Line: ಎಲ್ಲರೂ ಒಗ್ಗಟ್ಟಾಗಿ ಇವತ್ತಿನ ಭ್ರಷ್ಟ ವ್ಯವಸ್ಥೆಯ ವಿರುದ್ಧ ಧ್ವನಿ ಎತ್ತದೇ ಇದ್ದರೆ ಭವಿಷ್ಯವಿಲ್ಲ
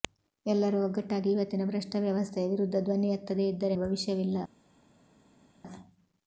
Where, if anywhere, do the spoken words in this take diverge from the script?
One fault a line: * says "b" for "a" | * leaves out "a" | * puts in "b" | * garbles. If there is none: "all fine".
all fine